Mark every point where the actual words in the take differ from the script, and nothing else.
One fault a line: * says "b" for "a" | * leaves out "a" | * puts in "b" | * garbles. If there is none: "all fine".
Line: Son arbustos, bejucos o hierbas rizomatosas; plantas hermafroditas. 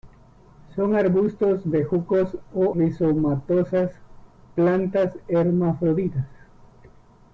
* leaves out "hierbas"